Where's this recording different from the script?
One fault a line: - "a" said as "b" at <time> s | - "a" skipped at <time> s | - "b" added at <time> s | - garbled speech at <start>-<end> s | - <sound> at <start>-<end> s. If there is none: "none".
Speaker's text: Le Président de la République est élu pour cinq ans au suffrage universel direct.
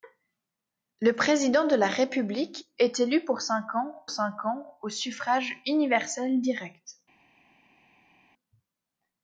- "cinq ans" added at 4.1 s